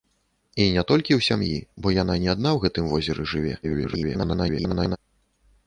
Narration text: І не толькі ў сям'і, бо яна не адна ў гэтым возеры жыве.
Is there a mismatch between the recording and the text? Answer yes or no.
yes